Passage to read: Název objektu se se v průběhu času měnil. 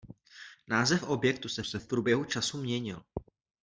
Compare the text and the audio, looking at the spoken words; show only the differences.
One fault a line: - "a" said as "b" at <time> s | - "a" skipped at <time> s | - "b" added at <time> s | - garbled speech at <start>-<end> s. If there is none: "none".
none